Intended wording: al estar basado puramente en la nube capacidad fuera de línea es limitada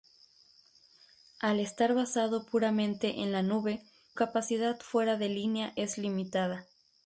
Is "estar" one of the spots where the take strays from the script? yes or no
no